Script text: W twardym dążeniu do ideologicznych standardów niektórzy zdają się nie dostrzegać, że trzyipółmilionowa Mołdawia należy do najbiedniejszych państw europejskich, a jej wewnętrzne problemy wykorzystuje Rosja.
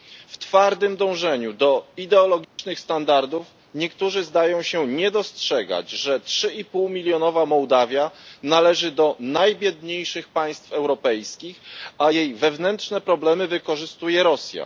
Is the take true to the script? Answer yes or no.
yes